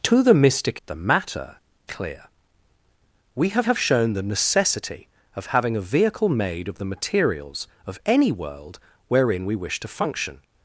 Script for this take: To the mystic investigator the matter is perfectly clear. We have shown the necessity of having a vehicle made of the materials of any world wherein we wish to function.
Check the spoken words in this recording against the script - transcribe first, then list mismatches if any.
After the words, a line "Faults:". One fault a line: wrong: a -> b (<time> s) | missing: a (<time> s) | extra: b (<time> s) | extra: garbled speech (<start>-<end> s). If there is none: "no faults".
To the mystic the matter clear. We have have shown the necessity of having a vehicle made of the materials of any world wherein we wish to function.
Faults:
missing: investigator (0.8 s)
missing: is perfectly (1.6 s)
extra: have (3.6 s)